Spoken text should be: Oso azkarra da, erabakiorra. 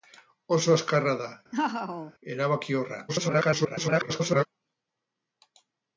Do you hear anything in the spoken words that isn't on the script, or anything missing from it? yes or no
yes